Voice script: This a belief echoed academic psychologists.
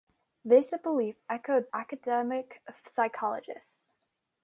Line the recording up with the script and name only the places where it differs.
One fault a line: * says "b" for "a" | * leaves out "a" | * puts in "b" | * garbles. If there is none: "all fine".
all fine